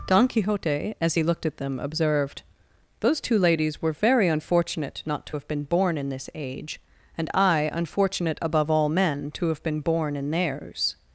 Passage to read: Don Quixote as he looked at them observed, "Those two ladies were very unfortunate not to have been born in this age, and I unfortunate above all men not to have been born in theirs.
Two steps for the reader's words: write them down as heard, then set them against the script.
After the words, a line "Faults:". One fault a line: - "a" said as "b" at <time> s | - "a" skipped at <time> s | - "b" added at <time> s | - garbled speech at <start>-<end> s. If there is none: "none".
Don Quixote as he looked at them observed, "Those two ladies were very unfortunate not to have been born in this age, and I unfortunate above all men to have been born in theirs.
Faults:
- "not" skipped at 9.3 s